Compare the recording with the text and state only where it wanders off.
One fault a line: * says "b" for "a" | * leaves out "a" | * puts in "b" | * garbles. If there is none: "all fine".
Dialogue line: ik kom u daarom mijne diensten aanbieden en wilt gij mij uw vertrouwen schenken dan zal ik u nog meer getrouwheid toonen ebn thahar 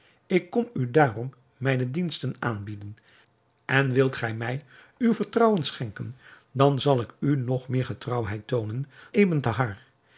all fine